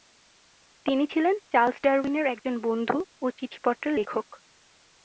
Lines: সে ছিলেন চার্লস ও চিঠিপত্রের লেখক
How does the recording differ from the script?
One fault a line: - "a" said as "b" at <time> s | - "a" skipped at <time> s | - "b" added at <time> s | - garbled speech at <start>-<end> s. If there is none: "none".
- "সে" said as "তিনি" at 0.8 s
- "ডারউইনের একজন বন্ধু" added at 1.8 s